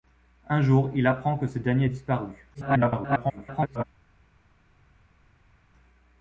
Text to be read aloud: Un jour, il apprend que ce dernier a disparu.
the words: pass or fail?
fail